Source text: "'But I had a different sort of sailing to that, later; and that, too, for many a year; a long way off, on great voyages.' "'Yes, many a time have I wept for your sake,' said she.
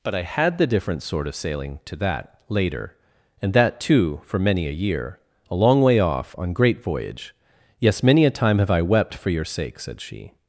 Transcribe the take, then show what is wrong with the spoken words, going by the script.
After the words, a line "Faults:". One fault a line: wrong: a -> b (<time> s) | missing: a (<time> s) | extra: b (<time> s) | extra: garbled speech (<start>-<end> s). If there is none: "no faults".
"'But I had the different sort of sailing to that, later; and that, too, for many a year; a long way off, on great voyage.' "'Yes, many a time have I wept for your sake,' said she.
Faults:
wrong: a -> the (0.6 s)
wrong: voyages -> voyage (6.8 s)